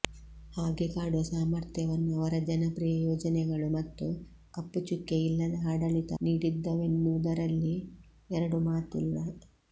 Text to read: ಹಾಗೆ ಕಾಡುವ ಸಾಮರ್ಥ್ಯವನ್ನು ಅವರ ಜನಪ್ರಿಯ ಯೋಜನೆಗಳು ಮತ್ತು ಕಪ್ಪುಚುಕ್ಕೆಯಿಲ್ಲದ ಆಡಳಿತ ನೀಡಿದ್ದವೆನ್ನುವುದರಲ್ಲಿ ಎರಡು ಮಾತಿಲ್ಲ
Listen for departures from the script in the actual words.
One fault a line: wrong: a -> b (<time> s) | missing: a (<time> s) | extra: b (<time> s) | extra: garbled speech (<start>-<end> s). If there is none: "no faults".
no faults